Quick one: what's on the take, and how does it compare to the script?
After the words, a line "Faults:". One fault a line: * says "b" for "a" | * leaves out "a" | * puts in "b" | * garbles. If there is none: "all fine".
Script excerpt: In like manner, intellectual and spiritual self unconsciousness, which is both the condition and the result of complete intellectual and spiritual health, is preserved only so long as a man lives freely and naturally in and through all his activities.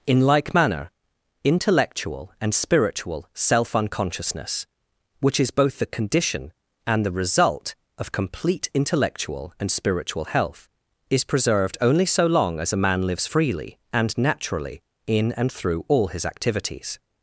In like manner, intellectual and spiritual self unconsciousness, which is both the condition and the result of complete intellectual and spiritual health, is preserved only so long as a man lives freely and naturally in and through all his activities.
Faults:
all fine